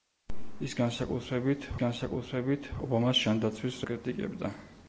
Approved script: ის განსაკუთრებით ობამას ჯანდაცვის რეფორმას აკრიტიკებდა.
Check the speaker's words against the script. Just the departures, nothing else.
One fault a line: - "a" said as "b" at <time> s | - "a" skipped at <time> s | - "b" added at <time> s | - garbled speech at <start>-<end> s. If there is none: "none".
- "განსაკუთრებით" added at 1.8 s
- "რეფორმას" skipped at 3.8 s